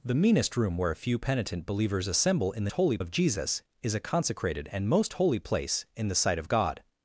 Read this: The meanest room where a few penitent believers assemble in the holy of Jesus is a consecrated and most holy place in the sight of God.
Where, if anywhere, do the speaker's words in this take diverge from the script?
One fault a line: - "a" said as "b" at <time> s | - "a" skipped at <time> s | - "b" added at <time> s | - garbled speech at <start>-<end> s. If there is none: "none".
none